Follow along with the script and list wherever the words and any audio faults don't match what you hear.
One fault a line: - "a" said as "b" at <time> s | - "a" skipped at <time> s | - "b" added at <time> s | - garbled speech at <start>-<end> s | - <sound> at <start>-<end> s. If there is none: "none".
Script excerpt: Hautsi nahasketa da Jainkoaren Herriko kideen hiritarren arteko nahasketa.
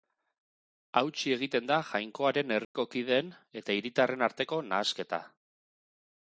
- "nahasketa" said as "egiten" at 1.4 s
- dropout at 2.6-2.7 s
- "eta" added at 3.6 s